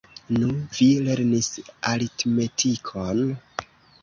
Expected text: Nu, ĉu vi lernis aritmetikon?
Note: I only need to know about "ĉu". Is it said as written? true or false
false